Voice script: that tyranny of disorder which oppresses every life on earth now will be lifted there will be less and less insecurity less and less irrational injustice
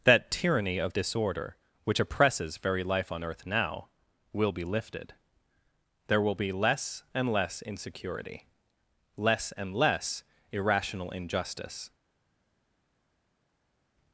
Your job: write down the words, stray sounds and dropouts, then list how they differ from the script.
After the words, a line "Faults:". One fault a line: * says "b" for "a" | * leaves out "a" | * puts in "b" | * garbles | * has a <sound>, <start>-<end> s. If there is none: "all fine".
that tyranny of disorder which oppresses very life on earth now will be lifted there will be less and less insecurity less and less irrational injustice
Faults:
* says "very" for "every"